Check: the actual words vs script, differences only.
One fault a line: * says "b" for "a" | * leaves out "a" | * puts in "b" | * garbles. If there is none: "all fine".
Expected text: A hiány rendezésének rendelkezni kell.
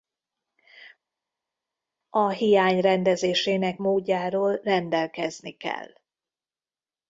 * puts in "módjáról"